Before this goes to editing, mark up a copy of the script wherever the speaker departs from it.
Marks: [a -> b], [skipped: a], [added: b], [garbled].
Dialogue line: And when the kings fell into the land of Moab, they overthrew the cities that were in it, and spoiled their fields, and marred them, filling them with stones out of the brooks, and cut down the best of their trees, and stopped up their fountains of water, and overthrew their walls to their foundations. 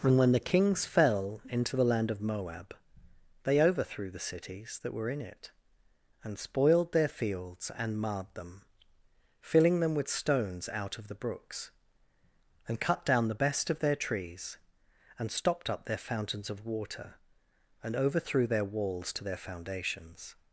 And when the kings fell into the land of Moab, they overthrew the cities that were in it, and spoiled their fields, and marred them, filling them with stones out of the brooks, and cut down the best of their trees, and stopped up their fountains of water, and overthrew their walls to their foundations.